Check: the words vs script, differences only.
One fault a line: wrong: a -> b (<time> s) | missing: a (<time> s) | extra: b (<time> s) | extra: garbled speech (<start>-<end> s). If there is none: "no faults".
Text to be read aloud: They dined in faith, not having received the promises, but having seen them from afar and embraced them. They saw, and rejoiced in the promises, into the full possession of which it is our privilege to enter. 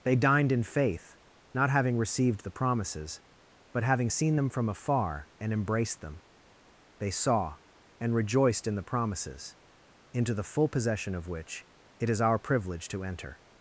no faults